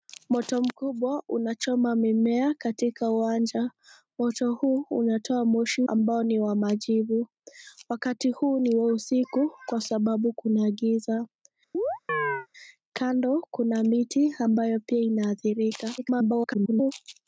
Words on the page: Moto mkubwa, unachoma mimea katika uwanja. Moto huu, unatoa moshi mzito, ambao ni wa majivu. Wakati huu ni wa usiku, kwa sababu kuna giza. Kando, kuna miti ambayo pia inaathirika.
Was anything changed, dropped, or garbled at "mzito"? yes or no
yes